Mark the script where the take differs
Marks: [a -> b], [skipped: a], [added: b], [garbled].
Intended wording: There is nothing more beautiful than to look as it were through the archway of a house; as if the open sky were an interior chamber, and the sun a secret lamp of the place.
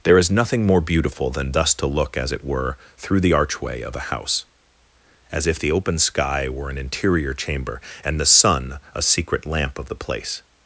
There is nothing more beautiful than [added: thus] to look as it were through the archway of a house; as if the open sky were an interior chamber, and the sun a secret lamp of the place.